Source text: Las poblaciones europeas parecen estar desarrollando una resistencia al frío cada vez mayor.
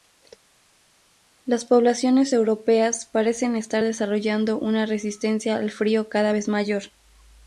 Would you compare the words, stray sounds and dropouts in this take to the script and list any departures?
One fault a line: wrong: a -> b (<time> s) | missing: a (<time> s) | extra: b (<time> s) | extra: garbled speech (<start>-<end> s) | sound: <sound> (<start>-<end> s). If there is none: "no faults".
no faults